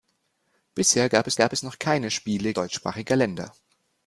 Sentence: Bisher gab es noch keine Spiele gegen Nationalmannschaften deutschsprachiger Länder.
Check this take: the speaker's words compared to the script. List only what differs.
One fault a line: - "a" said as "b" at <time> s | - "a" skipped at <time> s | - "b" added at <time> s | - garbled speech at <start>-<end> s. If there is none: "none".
- "gab es" added at 1.4 s
- "gegen Nationalmannschaften" skipped at 2.5 s